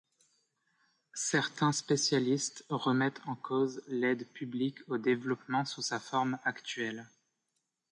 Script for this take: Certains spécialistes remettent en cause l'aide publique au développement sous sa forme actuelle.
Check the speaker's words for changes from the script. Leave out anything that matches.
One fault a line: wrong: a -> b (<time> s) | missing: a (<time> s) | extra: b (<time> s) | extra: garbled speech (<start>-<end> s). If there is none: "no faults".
no faults